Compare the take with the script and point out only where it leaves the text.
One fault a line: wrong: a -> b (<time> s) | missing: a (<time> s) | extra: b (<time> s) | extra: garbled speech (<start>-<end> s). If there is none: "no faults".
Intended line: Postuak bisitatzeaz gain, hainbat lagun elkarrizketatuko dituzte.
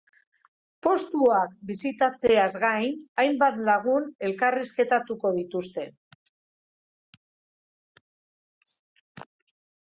no faults